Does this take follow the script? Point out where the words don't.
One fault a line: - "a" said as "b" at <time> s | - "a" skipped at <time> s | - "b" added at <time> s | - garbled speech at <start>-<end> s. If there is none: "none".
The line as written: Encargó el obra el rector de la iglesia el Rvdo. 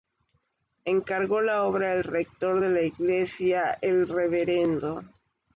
- "el" said as "la" at 1.4 s